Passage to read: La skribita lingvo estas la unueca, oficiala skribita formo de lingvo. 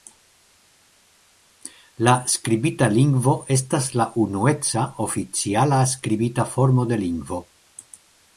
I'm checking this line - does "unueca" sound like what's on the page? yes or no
yes